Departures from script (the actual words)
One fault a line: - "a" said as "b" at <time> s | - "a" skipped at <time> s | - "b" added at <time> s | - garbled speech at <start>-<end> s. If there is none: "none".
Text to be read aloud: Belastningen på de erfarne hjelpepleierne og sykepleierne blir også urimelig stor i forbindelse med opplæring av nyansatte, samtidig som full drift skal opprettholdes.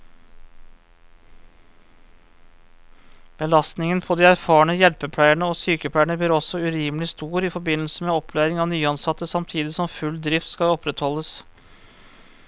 none